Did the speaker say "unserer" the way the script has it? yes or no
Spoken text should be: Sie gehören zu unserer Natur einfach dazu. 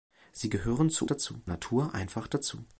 no